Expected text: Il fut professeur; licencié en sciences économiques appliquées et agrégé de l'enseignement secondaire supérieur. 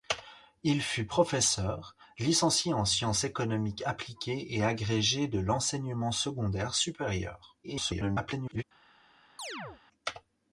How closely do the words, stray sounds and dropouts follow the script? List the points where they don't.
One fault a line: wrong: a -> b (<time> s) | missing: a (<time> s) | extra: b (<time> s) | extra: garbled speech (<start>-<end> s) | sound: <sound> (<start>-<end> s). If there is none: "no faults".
extra: garbled speech (7.6-8.6 s)
sound: chirp (9.4-9.8 s)